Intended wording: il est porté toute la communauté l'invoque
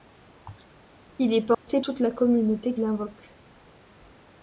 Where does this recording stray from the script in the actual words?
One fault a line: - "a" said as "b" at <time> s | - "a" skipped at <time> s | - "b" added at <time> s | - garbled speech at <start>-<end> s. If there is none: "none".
none